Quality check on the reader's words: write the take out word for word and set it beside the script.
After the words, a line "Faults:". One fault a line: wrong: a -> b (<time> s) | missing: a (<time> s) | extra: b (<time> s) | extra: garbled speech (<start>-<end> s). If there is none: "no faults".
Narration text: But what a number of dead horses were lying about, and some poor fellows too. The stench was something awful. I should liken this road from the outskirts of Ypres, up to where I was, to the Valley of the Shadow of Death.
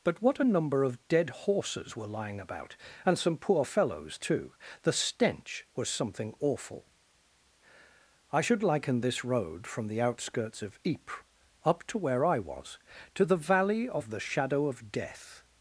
But what a number of dead horses were lying about, and some poor fellows too. The stench was something awful. I should liken this road from the outskirts of Ypres, up to where I was, to the Valley of the Shadow of Death.
Faults:
no faults